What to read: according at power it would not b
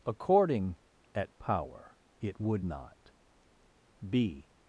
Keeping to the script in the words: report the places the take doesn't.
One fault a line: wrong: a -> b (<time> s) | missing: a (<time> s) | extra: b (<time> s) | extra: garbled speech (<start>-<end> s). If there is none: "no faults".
no faults